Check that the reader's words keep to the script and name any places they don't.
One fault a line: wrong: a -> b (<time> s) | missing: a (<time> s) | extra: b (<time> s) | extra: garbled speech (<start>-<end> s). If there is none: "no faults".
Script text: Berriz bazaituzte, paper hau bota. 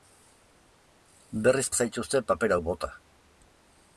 no faults